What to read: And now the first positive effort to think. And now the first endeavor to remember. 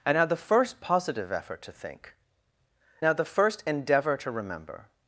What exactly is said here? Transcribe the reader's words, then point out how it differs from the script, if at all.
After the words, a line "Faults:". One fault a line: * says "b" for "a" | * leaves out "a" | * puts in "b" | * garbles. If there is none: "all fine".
And now the first positive effort to think. Now the first endeavor to remember.
Faults:
* leaves out "And"